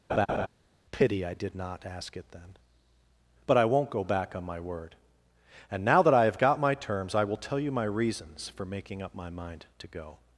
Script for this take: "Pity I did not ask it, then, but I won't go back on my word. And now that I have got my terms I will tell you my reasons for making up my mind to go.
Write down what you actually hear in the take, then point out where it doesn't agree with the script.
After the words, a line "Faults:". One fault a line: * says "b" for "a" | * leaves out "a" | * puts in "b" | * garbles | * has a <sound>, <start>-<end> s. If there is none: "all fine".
"Pity I did not ask it, then, but I won't go back on my word. And now that I have got my terms I will tell you my reasons for making up my mind to go.
Faults:
* has a laugh, 0.1-0.5 s